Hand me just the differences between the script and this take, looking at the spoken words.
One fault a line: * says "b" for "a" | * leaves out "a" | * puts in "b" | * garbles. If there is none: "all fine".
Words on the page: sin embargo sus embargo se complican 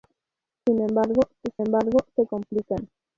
all fine